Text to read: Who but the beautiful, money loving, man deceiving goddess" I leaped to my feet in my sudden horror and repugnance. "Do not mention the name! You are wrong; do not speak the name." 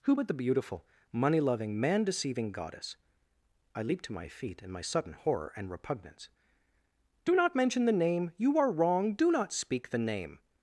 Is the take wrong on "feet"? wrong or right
right